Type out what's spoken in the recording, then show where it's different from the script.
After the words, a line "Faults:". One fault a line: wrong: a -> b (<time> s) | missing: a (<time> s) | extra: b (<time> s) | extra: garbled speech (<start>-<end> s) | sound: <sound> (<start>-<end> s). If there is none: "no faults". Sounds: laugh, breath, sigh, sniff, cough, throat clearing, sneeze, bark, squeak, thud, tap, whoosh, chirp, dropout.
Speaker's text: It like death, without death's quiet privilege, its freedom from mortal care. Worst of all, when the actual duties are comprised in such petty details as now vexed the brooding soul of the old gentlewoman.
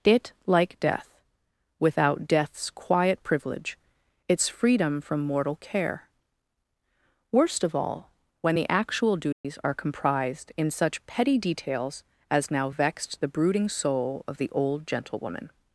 It like death, without death's quiet privilege, its freedom from mortal care. Worst of all, when the actual duties are comprised in such petty details as now vexed the brooding soul of the old gentlewoman.
Faults:
sound: dropout (9.3-9.4 s)